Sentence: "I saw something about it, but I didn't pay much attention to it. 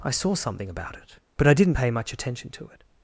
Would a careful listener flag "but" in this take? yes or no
no